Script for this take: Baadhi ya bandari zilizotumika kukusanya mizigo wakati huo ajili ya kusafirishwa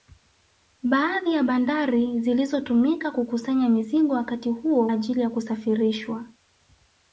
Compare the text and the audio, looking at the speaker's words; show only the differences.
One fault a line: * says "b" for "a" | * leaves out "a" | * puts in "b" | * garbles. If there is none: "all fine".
all fine